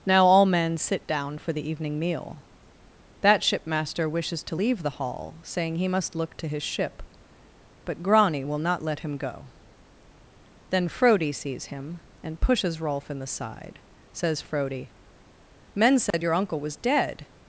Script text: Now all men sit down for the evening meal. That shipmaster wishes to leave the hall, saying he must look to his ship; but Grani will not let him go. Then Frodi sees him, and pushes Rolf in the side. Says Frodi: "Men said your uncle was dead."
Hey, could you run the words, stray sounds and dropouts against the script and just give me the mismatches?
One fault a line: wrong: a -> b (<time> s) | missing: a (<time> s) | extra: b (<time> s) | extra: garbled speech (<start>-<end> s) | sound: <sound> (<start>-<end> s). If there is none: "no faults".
sound: dropout (16.1-16.1 s)